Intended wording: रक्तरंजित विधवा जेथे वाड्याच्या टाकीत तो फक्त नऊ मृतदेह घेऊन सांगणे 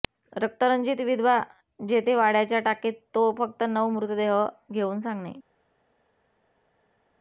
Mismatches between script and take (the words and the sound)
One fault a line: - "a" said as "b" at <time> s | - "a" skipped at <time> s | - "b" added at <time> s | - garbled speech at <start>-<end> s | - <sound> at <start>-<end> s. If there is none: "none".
none